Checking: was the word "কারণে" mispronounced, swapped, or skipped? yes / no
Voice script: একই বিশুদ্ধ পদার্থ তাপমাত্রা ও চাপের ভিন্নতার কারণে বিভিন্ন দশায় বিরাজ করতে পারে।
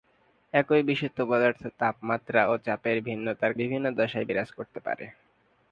yes